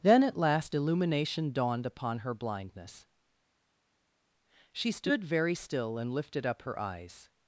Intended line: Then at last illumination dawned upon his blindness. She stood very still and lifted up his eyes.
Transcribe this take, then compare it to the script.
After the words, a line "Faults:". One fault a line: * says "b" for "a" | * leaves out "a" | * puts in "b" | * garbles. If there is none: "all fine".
Then at last illumination dawned upon her blindness. She stood very still and lifted up her eyes.
Faults:
* says "her" for "his"
* says "her" for "his"